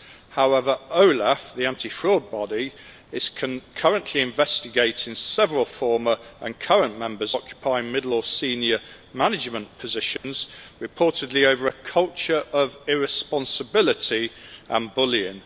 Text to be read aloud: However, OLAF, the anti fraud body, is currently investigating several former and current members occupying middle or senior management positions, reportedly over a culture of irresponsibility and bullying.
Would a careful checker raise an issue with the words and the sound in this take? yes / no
yes